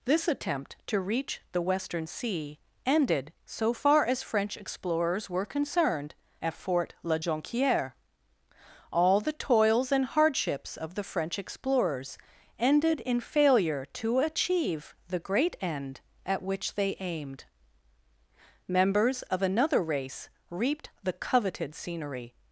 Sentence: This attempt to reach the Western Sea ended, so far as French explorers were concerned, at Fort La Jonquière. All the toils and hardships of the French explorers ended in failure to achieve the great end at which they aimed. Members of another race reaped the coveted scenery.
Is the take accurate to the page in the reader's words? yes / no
yes